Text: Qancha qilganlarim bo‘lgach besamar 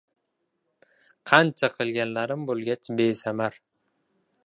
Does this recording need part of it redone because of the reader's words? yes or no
no